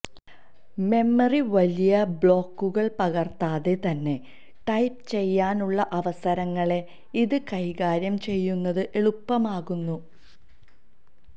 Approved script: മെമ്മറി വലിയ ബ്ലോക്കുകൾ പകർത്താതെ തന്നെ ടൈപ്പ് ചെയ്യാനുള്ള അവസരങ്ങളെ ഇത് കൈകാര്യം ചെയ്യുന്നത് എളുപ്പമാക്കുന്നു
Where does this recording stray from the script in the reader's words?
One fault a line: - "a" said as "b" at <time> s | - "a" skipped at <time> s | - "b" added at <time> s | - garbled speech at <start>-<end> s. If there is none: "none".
none